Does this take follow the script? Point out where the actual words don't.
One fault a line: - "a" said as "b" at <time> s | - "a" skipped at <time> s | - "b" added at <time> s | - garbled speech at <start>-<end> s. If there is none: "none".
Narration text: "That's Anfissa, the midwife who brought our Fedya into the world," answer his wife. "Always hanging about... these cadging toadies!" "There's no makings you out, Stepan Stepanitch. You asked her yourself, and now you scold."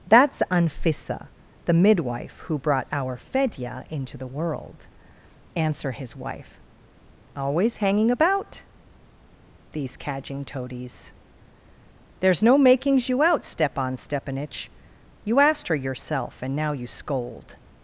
none